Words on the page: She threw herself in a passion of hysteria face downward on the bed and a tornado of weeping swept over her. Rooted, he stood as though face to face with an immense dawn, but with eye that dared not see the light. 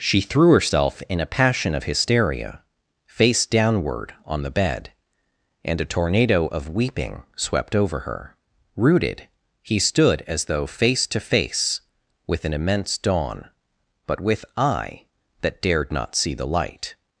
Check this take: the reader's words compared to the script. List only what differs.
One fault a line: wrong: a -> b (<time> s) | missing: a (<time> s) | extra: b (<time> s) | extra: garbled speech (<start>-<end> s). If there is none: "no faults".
no faults